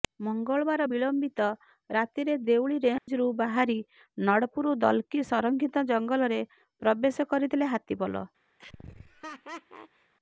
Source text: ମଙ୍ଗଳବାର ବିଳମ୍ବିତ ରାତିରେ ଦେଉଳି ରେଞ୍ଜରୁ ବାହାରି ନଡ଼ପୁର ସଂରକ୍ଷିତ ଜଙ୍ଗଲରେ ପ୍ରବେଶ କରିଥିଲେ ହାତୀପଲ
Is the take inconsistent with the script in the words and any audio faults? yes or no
yes